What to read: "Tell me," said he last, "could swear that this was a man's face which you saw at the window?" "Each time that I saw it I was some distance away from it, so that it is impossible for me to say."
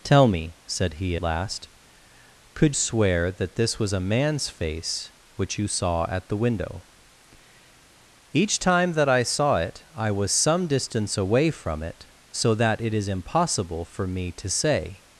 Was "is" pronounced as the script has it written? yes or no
yes